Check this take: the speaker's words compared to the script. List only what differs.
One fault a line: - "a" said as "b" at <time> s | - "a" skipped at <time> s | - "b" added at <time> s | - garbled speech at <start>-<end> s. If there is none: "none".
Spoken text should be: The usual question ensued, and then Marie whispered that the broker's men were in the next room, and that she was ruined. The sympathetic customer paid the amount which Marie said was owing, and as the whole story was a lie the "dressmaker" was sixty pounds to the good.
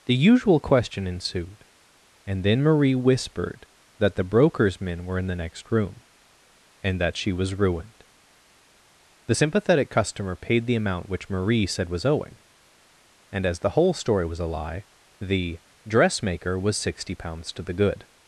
none